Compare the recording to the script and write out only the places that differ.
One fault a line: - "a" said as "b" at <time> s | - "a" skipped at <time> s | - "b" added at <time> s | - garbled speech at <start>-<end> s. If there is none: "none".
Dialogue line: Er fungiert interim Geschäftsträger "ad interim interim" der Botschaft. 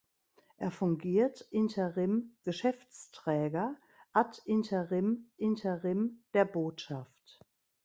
none